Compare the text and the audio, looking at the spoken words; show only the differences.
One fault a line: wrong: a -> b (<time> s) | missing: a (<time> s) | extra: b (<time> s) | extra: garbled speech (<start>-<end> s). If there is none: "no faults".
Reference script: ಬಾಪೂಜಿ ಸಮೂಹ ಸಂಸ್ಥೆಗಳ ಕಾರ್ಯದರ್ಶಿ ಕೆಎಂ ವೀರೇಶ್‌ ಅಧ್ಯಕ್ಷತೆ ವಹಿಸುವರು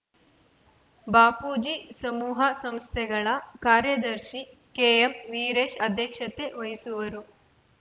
no faults